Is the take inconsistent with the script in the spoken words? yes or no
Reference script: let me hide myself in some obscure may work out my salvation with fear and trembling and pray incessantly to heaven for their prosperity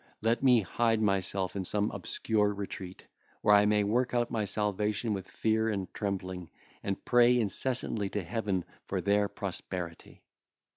yes